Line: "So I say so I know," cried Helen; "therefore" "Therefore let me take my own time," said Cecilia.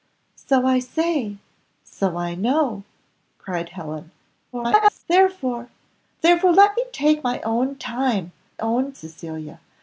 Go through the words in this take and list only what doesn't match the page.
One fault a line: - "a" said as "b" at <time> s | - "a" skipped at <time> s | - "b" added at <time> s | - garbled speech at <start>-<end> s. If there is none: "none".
- garbled speech at 4.5-5.0 s
- "said" said as "own" at 8.6 s